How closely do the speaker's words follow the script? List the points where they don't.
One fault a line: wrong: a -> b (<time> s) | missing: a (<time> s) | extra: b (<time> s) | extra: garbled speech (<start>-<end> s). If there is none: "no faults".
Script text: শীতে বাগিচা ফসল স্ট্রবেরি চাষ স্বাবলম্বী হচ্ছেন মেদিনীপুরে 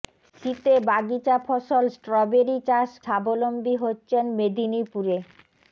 no faults